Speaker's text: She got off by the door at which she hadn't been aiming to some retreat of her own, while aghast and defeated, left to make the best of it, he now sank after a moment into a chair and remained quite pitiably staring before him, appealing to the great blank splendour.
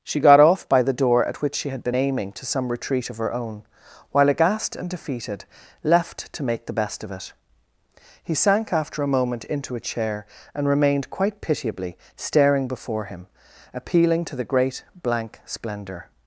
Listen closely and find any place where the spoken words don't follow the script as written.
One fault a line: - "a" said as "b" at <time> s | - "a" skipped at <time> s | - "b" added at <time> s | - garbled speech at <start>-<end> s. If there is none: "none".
- "hadn't" said as "had" at 1.7 s
- "now" skipped at 8.3 s